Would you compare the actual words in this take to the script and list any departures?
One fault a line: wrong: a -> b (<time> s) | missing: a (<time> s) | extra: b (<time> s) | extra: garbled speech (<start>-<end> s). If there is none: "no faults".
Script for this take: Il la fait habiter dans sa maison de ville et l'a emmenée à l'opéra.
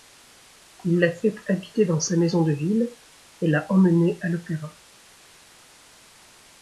no faults